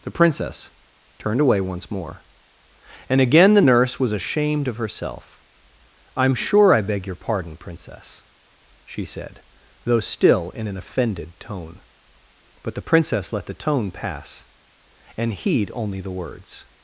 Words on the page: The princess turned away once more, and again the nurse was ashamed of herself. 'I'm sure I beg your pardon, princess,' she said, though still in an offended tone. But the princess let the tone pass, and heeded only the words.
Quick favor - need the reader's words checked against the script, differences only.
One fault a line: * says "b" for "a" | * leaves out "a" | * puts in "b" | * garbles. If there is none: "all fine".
* says "heed" for "heeded"